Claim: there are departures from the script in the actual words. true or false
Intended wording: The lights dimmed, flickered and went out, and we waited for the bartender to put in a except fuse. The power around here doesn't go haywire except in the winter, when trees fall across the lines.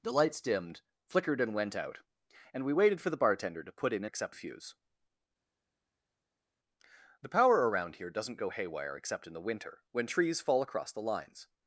false